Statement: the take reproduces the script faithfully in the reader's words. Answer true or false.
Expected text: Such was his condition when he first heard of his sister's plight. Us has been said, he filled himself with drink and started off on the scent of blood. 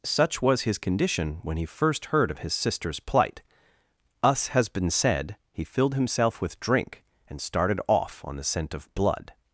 true